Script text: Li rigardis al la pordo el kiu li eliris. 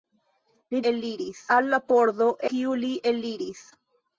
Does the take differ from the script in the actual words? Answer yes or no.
yes